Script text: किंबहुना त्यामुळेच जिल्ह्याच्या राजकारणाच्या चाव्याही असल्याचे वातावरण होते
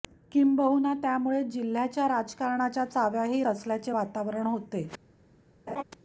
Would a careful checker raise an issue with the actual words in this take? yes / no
no